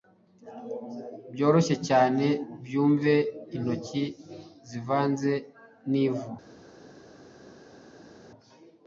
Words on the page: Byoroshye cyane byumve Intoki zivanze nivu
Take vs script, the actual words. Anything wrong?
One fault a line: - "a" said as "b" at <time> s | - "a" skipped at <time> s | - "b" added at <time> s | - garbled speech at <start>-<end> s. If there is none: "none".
none